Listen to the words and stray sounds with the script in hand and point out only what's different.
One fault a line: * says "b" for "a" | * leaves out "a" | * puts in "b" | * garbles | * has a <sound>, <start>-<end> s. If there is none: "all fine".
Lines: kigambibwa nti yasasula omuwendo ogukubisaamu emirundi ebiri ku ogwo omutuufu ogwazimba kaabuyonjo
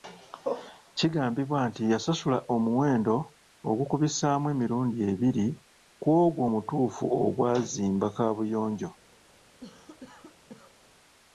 * has a cough, 9.6-10.8 s